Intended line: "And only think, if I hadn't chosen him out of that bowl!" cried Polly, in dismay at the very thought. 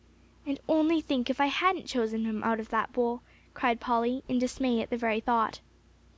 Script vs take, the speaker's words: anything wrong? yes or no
no